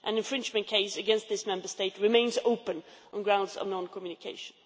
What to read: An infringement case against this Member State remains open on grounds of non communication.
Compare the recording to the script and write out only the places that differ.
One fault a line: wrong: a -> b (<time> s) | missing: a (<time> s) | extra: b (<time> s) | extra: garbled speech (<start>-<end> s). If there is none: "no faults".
no faults